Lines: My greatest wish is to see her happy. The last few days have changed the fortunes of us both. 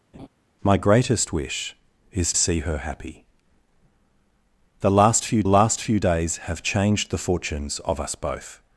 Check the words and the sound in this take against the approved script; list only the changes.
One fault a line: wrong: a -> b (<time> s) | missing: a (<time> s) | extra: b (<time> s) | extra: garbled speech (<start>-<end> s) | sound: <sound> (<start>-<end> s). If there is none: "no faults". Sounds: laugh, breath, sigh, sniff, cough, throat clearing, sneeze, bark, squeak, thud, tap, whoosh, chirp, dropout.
sound: laugh (0.1-0.3 s)
missing: to (2.3 s)
extra: last few (5.4 s)